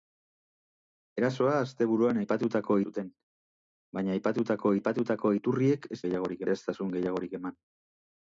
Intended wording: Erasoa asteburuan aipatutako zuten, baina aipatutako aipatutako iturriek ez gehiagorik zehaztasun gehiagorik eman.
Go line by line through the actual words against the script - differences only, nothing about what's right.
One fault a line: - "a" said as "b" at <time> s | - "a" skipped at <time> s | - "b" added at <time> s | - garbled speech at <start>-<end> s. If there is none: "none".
none